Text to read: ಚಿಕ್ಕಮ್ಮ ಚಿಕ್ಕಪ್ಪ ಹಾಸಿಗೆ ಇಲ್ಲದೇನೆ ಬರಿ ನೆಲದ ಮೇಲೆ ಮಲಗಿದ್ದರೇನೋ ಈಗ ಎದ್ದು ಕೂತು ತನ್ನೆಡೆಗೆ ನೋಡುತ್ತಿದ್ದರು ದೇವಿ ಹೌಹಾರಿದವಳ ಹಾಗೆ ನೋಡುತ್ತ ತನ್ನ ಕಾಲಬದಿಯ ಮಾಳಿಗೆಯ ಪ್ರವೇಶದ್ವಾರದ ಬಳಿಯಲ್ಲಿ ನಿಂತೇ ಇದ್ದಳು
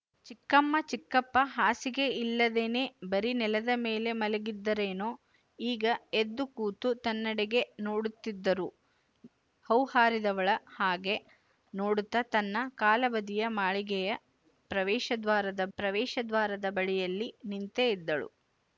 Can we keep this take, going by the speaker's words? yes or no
no